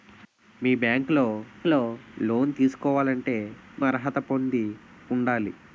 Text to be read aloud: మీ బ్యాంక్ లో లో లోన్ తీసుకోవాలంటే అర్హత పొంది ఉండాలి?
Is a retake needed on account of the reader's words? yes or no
no